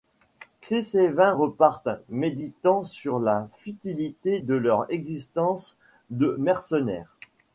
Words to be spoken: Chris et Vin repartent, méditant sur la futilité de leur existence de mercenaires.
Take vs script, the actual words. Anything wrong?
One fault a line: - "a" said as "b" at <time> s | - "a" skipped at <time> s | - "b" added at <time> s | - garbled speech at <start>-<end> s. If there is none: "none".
none